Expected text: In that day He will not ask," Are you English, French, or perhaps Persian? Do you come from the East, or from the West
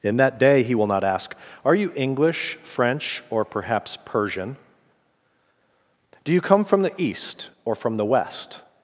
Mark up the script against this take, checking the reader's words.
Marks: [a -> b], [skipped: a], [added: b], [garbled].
In that day He will not ask," Are you English, French, or perhaps Persian? Do you come from the East, or from the West